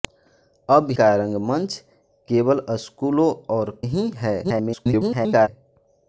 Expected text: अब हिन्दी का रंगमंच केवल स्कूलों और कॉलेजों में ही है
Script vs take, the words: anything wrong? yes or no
yes